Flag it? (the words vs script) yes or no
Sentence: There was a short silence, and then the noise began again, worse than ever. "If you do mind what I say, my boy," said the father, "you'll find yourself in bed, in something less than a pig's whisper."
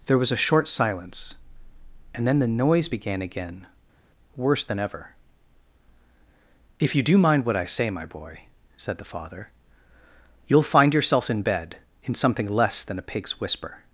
no